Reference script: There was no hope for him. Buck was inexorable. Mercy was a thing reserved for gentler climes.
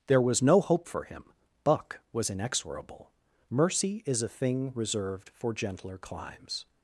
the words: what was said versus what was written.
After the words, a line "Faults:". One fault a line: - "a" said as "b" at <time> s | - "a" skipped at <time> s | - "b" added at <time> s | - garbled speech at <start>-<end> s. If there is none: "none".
There was no hope for him. Buck was inexorable. Mercy is a thing reserved for gentler climes.
Faults:
- "was" said as "is" at 4.1 s